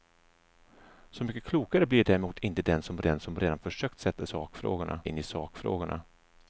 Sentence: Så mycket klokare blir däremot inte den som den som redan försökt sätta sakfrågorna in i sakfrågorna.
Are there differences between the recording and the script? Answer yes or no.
no